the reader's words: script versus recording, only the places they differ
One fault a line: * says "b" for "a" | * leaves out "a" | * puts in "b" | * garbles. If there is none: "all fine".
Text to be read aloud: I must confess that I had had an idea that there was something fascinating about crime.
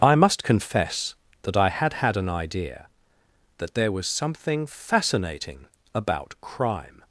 all fine